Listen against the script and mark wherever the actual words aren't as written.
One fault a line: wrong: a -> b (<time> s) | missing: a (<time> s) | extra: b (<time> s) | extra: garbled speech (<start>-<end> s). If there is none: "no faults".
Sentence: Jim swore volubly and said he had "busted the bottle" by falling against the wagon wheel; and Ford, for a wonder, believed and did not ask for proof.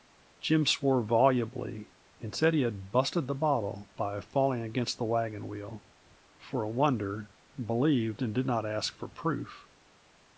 missing: and Ford (5.8 s)